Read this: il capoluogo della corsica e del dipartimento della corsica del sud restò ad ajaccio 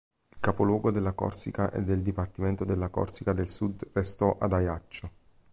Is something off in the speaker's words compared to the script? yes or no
no